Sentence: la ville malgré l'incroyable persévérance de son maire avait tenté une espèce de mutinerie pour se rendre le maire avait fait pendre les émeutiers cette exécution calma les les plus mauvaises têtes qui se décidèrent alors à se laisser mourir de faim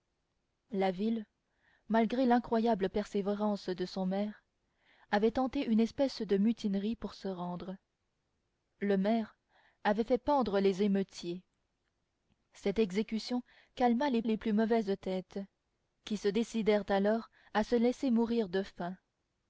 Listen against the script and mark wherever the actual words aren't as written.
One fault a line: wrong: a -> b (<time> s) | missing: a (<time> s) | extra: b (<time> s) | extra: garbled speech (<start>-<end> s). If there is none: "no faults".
no faults